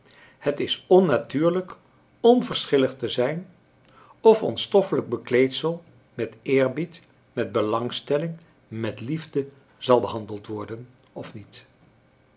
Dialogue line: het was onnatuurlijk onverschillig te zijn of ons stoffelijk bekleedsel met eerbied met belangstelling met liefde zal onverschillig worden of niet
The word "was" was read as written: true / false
false